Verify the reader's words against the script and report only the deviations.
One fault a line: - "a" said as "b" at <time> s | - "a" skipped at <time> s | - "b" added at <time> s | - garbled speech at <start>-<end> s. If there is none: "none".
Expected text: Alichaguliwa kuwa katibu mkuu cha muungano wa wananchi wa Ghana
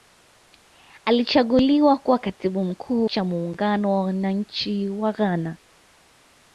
none